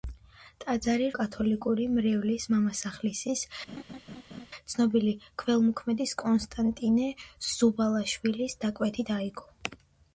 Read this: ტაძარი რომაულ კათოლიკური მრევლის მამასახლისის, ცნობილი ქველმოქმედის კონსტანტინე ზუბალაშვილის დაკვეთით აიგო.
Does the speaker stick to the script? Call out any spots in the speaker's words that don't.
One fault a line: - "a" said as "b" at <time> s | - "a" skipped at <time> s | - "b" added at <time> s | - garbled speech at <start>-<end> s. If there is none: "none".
- "რომაულ" skipped at 1.1 s